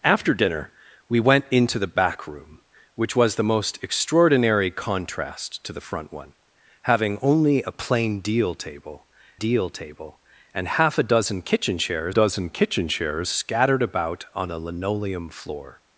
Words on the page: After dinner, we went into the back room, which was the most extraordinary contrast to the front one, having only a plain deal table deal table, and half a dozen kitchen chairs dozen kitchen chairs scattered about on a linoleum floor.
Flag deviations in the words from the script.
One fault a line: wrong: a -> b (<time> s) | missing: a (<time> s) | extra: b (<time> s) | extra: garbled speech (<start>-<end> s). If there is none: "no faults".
no faults